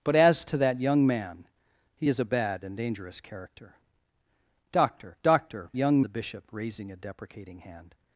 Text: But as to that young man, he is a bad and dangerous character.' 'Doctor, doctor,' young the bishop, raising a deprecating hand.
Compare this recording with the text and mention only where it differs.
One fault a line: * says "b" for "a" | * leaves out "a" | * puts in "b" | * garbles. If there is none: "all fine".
all fine